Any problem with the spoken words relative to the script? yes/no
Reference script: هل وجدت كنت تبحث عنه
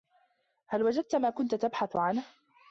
yes